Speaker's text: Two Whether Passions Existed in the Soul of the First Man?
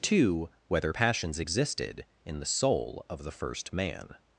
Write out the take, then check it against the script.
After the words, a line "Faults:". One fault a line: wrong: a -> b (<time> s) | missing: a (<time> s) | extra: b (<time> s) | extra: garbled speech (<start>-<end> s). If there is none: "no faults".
Two Whether Passions Existed in the Soul of the First Man?
Faults:
no faults